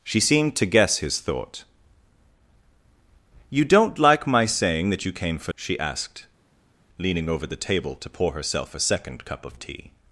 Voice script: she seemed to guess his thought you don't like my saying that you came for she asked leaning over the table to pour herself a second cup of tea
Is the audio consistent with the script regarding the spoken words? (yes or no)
yes